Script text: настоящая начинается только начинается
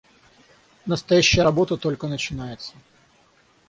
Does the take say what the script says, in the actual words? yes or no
no